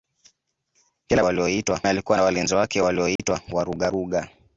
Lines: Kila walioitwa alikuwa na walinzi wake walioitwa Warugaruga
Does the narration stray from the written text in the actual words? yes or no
no